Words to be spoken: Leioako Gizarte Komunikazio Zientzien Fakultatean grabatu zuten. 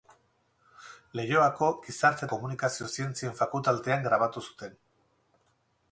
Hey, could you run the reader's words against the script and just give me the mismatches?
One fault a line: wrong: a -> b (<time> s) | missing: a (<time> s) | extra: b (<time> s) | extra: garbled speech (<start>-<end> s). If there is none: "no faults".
no faults